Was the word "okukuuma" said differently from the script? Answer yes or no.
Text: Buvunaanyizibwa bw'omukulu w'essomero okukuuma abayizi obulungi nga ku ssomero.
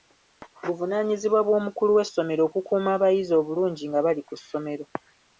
no